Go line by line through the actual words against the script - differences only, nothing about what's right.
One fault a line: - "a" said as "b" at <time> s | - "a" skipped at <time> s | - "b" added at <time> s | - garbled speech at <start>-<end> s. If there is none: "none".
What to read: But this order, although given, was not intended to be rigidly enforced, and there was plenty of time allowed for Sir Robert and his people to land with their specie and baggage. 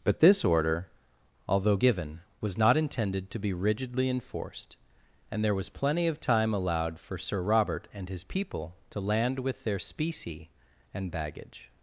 none